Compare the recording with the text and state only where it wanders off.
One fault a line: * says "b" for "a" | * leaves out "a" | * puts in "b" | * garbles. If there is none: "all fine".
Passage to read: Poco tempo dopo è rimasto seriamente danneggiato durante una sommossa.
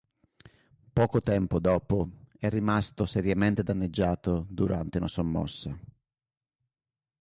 all fine